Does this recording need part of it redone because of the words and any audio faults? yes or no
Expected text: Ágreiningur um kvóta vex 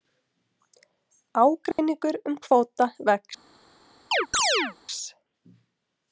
yes